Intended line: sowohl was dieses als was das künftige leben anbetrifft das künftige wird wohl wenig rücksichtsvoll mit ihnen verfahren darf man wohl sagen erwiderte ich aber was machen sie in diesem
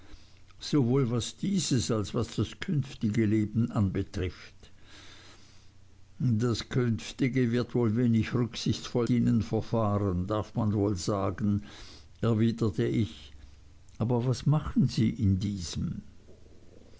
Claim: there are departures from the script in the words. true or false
true